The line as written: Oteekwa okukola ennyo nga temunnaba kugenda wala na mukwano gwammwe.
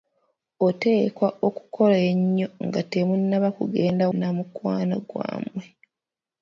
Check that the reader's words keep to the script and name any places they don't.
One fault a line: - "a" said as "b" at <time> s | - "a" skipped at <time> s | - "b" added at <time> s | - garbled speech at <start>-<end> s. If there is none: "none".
- "wala" skipped at 4.1 s